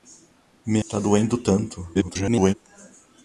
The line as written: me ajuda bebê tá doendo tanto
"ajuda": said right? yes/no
no